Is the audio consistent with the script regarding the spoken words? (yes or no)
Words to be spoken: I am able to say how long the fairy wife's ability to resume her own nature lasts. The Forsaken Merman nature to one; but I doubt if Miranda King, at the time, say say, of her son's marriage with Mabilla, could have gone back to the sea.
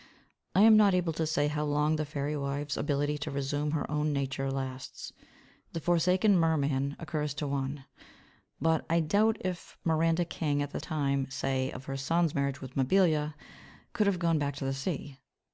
no